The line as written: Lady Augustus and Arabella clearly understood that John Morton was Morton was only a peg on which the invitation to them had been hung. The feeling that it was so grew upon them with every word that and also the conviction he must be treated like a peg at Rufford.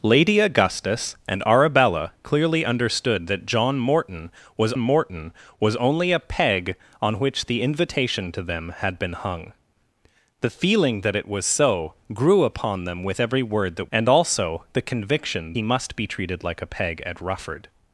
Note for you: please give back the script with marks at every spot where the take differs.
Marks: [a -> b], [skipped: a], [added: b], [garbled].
Lady Augustus and Arabella clearly understood that John Morton was Morton was only a peg on which the invitation to them had been hung. The feeling that it was so grew upon them with every word that and also the conviction he must be treated like a peg at Rufford.